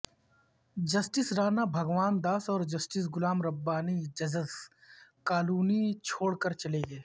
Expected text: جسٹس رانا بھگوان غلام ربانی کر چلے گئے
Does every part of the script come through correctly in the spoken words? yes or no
no